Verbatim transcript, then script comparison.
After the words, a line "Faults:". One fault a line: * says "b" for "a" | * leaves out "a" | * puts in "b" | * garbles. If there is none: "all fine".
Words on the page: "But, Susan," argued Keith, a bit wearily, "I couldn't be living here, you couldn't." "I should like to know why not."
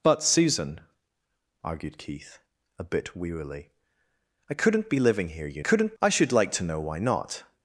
"But, Susan," argued Keith, a bit wearily, "I couldn't be living here, you couldn't." "I should like to know why not."
Faults:
all fine